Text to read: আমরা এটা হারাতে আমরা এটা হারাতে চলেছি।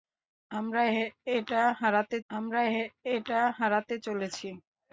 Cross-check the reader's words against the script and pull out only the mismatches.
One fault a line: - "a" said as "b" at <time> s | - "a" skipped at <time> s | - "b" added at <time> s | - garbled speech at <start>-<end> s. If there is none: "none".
none